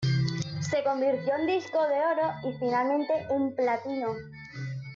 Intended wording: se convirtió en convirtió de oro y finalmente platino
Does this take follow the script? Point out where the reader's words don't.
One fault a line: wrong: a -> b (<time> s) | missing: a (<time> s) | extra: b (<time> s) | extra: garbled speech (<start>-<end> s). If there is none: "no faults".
wrong: convirtió -> disco (1.5 s)
extra: en (3.3 s)